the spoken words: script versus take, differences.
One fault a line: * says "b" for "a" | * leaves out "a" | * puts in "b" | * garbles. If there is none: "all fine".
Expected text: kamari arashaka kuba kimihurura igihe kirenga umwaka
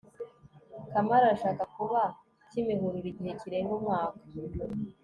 all fine